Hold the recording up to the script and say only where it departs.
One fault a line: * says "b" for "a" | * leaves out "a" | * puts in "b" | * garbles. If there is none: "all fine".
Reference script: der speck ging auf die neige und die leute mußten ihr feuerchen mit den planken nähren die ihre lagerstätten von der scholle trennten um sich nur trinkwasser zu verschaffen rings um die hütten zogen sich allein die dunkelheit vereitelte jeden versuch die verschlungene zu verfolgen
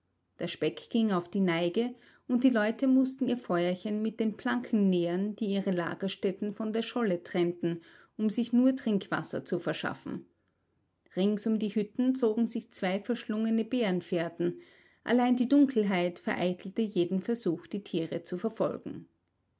* puts in "zwei verschlungene bärenfährten"
* says "tiere" for "verschlungene"